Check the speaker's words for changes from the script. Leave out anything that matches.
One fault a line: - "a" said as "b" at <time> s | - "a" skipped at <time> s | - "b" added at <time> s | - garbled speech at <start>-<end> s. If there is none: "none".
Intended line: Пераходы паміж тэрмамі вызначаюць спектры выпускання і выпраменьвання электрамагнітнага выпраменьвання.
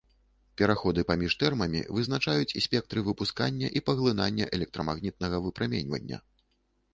- "выпраменьвання" said as "паглынання" at 3.9 s